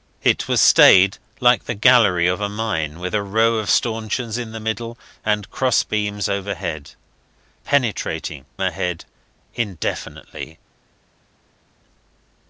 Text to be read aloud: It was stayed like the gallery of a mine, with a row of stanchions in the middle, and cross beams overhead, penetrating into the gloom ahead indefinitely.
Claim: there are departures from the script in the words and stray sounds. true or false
true